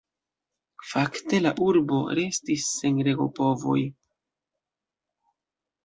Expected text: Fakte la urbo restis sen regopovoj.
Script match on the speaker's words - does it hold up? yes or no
yes